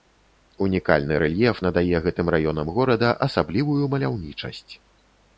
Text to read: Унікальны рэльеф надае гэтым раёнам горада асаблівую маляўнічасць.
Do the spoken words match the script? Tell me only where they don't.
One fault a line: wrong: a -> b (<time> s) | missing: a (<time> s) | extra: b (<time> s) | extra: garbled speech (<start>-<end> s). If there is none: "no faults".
no faults